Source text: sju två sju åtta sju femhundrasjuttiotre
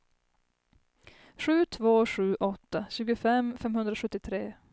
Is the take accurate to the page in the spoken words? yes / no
no